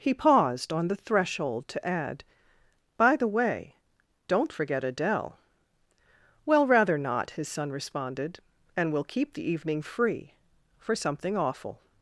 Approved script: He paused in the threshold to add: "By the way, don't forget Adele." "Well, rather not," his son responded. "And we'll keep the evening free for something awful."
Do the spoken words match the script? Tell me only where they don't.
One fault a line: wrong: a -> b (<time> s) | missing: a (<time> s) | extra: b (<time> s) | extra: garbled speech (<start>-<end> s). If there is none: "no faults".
wrong: in -> on (0.7 s)